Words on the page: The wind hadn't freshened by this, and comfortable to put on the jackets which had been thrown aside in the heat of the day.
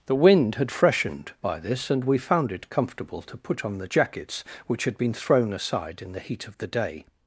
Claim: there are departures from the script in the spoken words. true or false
true